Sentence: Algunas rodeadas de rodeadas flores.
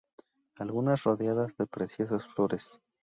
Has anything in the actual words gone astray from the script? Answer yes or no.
yes